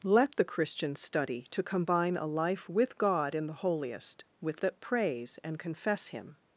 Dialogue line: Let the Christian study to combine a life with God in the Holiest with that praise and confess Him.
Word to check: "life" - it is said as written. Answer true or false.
true